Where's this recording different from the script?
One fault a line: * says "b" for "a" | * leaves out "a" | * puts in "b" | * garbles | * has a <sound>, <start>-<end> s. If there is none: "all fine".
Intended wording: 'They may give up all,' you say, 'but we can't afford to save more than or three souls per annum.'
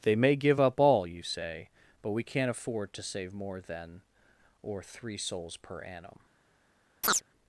* has a chirp, 7.0-7.2 s